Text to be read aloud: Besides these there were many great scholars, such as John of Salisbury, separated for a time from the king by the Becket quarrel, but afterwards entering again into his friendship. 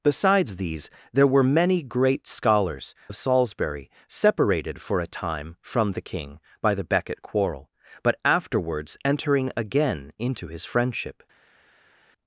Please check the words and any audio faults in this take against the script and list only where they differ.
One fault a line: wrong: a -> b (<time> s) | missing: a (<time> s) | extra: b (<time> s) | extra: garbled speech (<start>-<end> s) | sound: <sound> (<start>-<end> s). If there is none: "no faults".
missing: such as John (3.0 s)